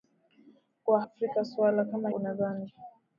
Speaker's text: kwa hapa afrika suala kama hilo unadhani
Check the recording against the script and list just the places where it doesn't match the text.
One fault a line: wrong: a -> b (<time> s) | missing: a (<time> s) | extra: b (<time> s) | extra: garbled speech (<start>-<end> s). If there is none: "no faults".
missing: hapa (1.0 s)
missing: hilo (2.1 s)